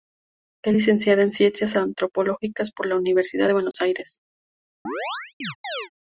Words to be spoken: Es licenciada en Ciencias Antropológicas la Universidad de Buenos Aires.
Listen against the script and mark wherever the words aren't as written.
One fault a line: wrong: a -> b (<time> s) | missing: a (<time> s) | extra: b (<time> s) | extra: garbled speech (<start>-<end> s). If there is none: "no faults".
extra: por (2.7 s)